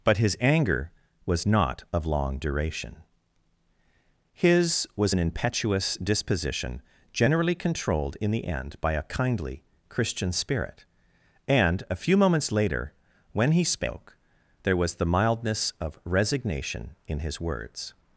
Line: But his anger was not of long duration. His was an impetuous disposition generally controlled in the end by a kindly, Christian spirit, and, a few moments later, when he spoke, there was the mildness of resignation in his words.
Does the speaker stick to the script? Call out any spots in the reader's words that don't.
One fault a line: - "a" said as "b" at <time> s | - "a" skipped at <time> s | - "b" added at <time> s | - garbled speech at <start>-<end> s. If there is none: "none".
none